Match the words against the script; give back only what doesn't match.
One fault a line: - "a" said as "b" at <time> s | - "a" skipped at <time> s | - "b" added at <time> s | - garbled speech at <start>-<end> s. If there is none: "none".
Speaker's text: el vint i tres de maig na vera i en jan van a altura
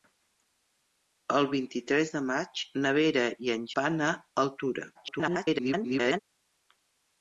- "jan" skipped at 3.7 s
- garbled speech at 4.9-6.2 s